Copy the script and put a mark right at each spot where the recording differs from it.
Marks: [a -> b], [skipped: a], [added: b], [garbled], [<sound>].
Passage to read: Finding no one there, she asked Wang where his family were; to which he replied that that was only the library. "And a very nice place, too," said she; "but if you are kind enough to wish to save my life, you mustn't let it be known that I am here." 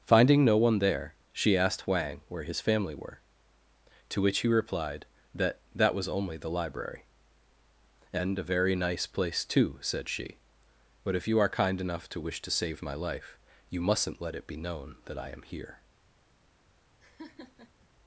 Finding no one there, she asked Wang where his family were; to which he replied that that was only the library. "And a very nice place, too," said she; "but if you are kind enough to wish to save my life, you mustn't let it be known that I am here." [laugh]